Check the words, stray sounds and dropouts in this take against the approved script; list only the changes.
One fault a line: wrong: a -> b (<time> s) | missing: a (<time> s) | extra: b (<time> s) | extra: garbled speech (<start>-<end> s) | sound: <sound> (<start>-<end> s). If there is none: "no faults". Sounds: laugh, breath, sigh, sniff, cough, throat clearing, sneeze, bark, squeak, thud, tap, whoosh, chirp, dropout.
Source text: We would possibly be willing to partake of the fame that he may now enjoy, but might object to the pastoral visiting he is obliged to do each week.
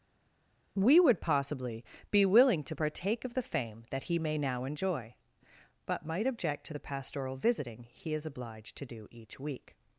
no faults